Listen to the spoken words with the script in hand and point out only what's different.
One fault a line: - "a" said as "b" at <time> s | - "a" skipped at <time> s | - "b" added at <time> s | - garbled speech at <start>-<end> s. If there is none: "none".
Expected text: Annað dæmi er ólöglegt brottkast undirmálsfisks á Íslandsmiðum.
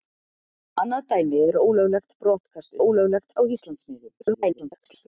- "undirmálsfisks" said as "ólöglegt" at 2.8 s
- garbled speech at 4.2-5.1 s